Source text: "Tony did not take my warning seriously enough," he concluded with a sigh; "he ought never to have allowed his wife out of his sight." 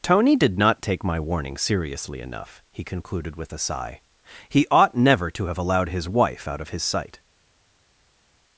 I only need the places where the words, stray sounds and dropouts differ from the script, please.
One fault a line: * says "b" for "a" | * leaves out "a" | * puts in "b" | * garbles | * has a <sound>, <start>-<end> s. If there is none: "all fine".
all fine